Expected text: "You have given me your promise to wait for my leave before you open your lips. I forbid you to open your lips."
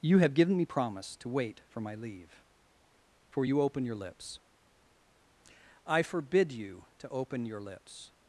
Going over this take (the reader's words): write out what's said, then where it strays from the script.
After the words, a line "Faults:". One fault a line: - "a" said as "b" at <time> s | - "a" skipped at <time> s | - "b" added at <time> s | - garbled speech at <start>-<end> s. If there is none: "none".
"You have given me promise to wait for my leave for you open your lips. I forbid you to open your lips."
Faults:
- "your" skipped at 0.7 s
- "before" said as "for" at 3.3 s